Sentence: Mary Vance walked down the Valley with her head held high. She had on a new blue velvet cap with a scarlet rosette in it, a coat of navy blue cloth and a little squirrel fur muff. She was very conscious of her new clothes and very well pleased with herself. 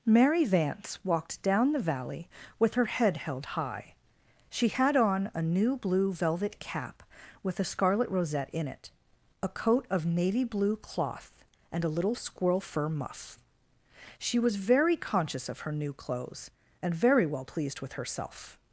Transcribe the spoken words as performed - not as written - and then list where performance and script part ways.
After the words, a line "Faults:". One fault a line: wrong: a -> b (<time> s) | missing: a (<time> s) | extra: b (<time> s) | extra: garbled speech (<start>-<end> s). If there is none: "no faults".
Mary Vance walked down the Valley with her head held high. She had on a new blue velvet cap with a scarlet rosette in it, a coat of navy blue cloth and a little squirrel fur muff. She was very conscious of her new clothes and very well pleased with herself.
Faults:
no faults